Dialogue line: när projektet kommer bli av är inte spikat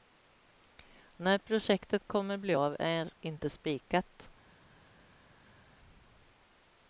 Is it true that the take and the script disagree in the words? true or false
false